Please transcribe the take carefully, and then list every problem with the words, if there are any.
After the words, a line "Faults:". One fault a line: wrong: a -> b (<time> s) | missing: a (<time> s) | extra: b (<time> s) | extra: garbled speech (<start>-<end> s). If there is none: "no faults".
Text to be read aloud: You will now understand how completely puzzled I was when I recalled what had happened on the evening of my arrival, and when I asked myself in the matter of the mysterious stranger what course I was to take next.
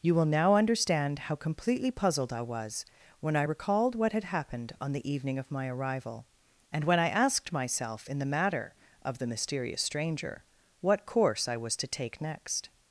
You will now understand how completely puzzled I was when I recalled what had happened on the evening of my arrival, and when I asked myself in the matter of the mysterious stranger what course I was to take next.
Faults:
no faults